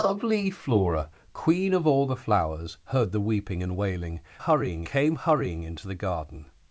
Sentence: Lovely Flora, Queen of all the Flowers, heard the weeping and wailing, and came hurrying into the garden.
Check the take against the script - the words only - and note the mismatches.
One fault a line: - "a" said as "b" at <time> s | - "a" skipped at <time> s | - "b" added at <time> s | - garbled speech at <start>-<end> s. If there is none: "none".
- "and" said as "hurrying" at 4.4 s